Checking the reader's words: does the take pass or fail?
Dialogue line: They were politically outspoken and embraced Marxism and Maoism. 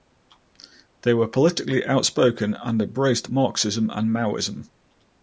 pass